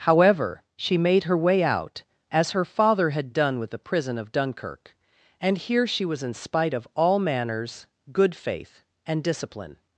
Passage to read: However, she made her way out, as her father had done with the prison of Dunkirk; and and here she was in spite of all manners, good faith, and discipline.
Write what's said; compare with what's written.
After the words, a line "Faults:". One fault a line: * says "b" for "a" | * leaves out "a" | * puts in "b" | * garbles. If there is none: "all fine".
However, she made her way out, as her father had done with the prison of Dunkirk; and here she was in spite of all manners, good faith, and discipline.
Faults:
* leaves out "and"